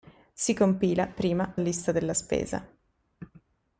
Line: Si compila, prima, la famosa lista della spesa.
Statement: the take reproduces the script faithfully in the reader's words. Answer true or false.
false